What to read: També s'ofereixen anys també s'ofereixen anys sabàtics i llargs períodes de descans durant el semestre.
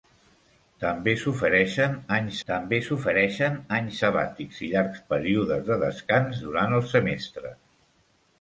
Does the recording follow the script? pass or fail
pass